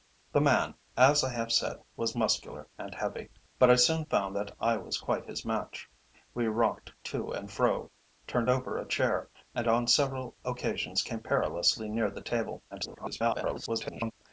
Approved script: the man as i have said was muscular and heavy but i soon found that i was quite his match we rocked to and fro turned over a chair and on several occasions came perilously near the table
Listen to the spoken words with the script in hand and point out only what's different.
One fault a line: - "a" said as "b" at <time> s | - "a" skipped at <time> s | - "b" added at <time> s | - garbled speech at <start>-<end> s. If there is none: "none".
- garbled speech at 12.7-14.1 s